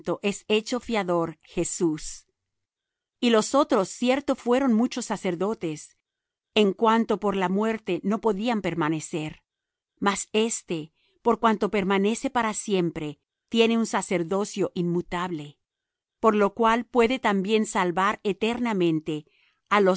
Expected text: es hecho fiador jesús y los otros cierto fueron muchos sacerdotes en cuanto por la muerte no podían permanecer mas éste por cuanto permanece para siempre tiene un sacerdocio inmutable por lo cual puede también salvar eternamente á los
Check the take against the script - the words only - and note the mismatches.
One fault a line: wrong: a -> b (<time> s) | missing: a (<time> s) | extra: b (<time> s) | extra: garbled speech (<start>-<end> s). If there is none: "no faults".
no faults